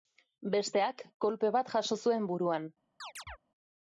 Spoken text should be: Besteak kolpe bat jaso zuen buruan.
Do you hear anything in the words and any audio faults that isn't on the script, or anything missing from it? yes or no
yes